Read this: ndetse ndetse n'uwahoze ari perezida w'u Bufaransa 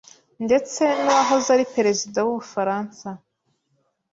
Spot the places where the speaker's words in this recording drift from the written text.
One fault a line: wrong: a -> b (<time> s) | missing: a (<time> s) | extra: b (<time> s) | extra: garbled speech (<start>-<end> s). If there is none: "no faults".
missing: ndetse (0.8 s)